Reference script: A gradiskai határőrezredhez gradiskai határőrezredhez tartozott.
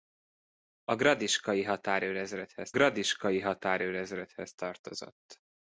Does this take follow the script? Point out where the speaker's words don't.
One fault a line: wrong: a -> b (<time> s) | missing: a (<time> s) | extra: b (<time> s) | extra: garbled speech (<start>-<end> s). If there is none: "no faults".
no faults